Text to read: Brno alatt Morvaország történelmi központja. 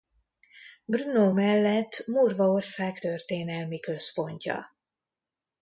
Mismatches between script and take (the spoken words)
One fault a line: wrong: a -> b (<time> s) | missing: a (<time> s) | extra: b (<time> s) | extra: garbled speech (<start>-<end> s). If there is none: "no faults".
wrong: alatt -> mellett (1.3 s)